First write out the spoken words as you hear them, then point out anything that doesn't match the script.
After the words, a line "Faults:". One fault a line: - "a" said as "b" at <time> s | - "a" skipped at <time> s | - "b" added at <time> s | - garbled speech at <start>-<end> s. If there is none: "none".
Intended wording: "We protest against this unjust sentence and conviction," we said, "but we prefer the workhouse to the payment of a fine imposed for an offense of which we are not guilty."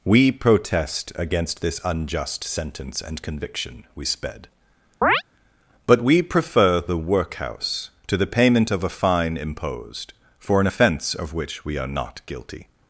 "We protest against this unjust sentence and conviction," we sped, "but we prefer the workhouse to the payment of a fine imposed for an offense of which we are not guilty."
Faults:
- "said" said as "sped" at 4.0 s